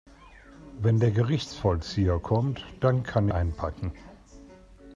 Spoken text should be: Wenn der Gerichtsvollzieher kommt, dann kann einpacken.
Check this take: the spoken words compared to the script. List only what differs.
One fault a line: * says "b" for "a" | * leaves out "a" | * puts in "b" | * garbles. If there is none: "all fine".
all fine